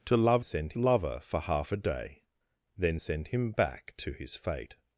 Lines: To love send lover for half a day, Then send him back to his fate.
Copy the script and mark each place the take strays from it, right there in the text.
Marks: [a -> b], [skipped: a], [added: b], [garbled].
To love send lover for half a day, Then send him back to his fate.